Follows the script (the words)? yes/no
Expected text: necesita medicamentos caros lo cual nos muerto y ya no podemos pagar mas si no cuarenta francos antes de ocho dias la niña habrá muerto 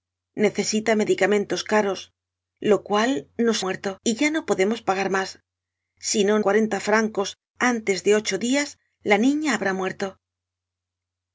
yes